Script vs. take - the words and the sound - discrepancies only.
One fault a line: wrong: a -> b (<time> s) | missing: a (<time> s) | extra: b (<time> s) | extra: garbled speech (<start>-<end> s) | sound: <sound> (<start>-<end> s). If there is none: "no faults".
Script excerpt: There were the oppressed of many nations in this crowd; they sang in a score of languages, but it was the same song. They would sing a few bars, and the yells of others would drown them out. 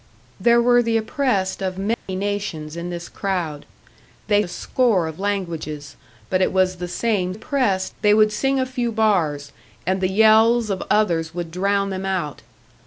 sound: dropout (1.9-2.1 s)
missing: sang in (4.4 s)
wrong: song -> oppressed (7.3 s)